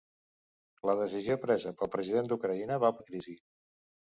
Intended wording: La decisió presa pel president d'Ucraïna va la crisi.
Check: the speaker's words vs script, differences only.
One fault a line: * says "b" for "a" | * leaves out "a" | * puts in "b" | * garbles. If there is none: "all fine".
all fine